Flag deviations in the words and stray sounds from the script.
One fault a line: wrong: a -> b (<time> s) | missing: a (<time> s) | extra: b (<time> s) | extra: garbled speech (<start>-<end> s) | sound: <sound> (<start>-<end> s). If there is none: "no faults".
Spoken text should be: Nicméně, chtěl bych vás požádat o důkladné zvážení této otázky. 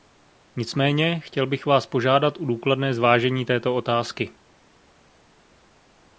no faults